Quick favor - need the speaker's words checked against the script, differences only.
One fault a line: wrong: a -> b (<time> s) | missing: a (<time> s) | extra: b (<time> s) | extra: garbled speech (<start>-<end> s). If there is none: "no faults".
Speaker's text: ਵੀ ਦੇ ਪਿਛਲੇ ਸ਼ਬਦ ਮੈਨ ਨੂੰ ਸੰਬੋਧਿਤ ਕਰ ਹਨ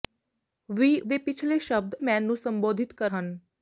no faults